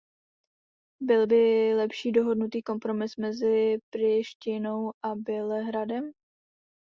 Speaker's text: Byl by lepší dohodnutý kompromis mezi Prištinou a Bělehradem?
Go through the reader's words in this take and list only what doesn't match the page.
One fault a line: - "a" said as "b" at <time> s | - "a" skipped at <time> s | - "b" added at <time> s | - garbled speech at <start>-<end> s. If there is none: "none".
none